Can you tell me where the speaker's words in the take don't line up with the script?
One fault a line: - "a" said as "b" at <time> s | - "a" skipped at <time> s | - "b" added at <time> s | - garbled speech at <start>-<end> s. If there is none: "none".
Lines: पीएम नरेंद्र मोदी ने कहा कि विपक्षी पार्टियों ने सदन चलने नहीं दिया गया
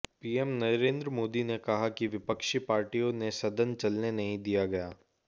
none